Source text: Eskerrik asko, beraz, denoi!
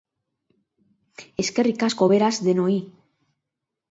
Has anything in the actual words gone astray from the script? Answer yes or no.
no